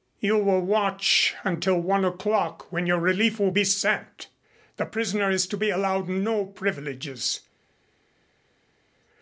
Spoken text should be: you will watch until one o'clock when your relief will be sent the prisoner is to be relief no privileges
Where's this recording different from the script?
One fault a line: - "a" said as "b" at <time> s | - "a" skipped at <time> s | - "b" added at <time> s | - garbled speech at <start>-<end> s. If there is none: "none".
- "relief" said as "allowed" at 5.7 s